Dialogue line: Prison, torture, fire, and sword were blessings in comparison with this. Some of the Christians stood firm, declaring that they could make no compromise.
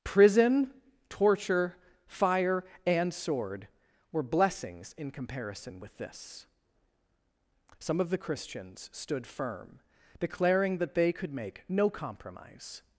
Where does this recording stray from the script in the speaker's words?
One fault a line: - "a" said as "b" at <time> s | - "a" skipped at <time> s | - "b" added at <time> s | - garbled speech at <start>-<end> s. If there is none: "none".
none